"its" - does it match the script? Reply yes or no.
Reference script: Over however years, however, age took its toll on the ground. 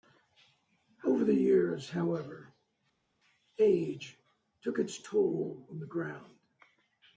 yes